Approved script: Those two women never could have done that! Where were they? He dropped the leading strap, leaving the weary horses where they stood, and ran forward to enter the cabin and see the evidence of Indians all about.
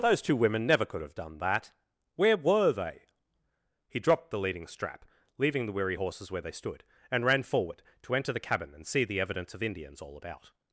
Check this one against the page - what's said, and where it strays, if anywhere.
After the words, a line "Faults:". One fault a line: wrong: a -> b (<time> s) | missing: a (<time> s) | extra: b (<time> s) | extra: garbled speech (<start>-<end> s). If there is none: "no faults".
Those two women never could have done that! Where were they? He dropped the leading strap, leaving the weary horses where they stood, and ran forward to enter the cabin and see the evidence of Indians all about.
Faults:
no faults